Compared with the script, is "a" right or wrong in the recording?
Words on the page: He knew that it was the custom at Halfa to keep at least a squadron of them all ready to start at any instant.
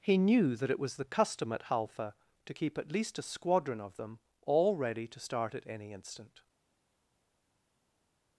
right